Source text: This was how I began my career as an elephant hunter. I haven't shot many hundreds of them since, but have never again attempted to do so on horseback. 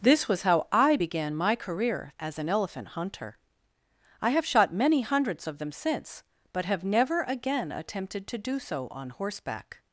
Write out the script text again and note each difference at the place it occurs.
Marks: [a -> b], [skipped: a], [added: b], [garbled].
This was how I began my career as an elephant hunter. I [haven't -> have] shot many hundreds of them since, but have never again attempted to do so on horseback.